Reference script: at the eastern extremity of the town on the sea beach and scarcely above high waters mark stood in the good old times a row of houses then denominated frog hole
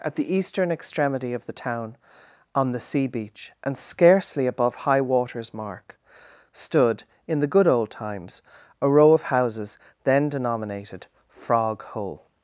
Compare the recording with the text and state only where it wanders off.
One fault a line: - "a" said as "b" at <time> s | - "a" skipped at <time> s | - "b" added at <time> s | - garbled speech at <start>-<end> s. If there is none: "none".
none